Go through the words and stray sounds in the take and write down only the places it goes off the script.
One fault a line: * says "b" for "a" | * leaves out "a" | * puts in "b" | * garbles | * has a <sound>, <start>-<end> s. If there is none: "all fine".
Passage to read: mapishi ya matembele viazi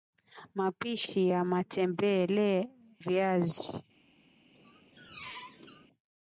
* has a squeak, 4.5-5.9 s